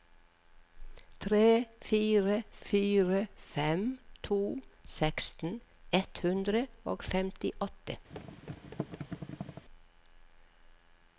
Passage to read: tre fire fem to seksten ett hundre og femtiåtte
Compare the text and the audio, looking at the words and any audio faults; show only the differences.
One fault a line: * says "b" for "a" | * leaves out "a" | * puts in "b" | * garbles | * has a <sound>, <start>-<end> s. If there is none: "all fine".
* puts in "fire"
* has a thud, 8.1-9.6 s